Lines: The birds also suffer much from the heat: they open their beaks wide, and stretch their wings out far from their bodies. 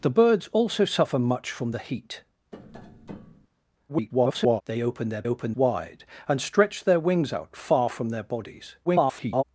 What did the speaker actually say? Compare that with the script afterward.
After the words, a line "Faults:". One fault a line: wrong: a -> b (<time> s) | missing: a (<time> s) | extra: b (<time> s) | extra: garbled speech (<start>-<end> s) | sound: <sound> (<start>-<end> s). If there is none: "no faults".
The birds also suffer much from the heat: [garbled] they open their open wide, and stretch their wings out far from their bodies. [garbled]
Faults:
sound: tap (2.5-3.5 s)
extra: garbled speech (3.9-4.6 s)
wrong: beaks -> open (5.3 s)
extra: garbled speech (8.8-9.4 s)